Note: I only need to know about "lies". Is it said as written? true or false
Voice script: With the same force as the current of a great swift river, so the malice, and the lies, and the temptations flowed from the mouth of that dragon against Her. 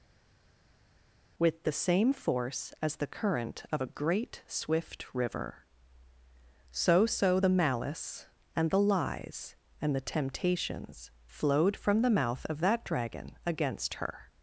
true